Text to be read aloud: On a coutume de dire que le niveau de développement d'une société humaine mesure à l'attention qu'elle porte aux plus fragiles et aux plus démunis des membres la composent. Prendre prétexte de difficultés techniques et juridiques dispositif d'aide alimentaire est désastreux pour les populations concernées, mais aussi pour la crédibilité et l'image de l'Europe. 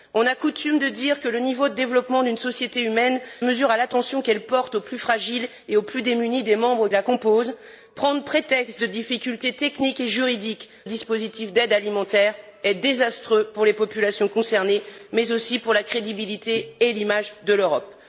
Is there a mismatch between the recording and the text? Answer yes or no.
no